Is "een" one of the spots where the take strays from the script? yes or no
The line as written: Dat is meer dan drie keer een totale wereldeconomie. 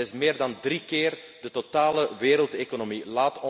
yes